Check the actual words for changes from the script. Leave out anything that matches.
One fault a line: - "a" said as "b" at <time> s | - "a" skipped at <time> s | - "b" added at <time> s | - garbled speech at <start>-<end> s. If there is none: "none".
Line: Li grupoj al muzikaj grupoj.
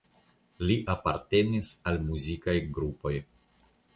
- "grupoj" said as "apartenis" at 0.9 s